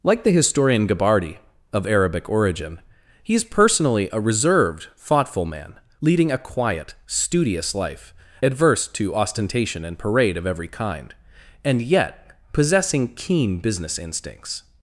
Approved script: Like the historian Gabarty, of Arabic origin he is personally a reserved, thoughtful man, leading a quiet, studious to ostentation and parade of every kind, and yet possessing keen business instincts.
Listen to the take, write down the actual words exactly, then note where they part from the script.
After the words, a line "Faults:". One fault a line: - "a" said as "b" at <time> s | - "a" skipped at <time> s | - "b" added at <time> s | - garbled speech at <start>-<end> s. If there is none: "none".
Like the historian Gabarty, of Arabic origin he is personally a reserved, thoughtful man, leading a quiet, studious life, adverse to ostentation and parade of every kind, and yet possessing keen business instincts.
Faults:
- "life adverse" added at 7.8 s